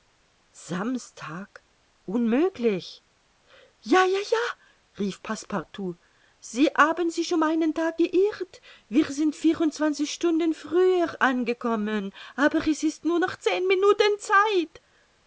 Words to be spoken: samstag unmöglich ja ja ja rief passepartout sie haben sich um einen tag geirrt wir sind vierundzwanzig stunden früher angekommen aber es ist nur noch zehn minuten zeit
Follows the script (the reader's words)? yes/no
yes